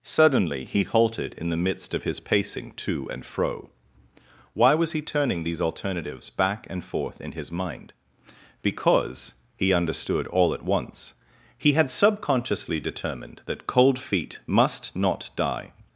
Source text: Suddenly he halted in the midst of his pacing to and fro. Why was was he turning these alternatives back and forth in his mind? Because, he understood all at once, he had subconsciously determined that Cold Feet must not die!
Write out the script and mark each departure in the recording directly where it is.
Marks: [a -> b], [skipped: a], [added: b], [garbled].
Suddenly he halted in the midst of his pacing to and fro. Why was [skipped: was] he turning these alternatives back and forth in his mind? Because, he understood all at once, he had subconsciously determined that Cold Feet must not die!